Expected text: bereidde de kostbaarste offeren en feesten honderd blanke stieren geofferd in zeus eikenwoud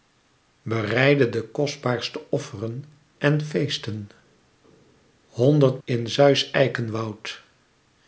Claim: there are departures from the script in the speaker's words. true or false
true